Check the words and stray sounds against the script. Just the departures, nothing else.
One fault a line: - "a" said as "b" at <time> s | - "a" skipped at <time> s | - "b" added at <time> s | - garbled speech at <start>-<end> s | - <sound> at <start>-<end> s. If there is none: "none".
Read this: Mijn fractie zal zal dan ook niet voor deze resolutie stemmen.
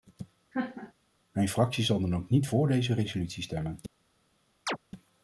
- laugh at 0.5-0.9 s
- "zal" skipped at 2.0 s
- chirp at 4.7-4.8 s